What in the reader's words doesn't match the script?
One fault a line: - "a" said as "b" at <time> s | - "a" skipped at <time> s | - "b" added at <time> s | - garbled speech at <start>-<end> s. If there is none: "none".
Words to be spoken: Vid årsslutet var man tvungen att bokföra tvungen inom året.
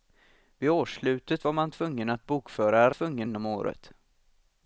none